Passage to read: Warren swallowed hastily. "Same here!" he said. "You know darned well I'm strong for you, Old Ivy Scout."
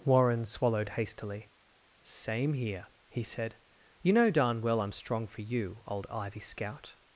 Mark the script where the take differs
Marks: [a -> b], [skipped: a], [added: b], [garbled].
Warren swallowed hastily. "Same here!" he said. "You know [darned -> darn] well I'm strong for you, Old Ivy Scout."